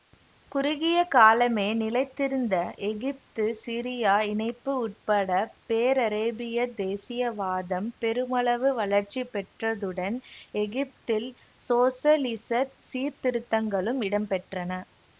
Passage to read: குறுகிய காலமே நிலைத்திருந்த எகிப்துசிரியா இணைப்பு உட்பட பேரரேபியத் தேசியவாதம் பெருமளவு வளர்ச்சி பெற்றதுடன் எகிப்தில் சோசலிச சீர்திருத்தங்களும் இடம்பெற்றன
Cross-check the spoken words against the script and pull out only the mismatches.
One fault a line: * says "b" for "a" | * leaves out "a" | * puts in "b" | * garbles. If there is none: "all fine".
all fine